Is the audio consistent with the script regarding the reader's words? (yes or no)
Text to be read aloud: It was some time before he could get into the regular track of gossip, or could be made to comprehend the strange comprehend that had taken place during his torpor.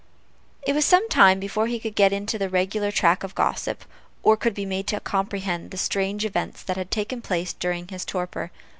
no